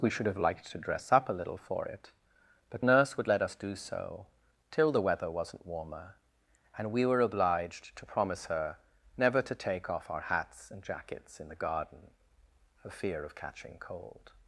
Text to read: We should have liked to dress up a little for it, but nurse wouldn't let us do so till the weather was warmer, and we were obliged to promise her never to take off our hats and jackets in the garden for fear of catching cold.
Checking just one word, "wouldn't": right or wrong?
wrong